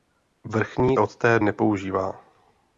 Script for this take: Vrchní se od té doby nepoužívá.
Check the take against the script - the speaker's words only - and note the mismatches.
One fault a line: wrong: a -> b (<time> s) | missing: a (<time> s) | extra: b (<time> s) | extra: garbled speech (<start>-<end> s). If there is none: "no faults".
missing: se (1.0 s)
missing: doby (1.4 s)